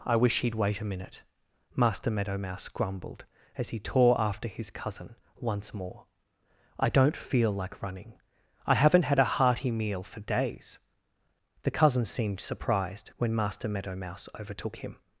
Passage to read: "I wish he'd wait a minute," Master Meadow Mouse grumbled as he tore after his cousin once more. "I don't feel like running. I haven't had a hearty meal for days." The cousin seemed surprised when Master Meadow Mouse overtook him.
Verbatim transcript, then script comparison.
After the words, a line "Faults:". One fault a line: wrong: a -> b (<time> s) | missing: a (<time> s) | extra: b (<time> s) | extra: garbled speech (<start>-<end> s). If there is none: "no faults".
"I wish he'd wait a minute," Master Meadow Mouse grumbled as he tore after his cousin once more. "I don't feel like running. I haven't had a hearty meal for days." The cousin seemed surprised when Master Meadow Mouse overtook him.
Faults:
no faults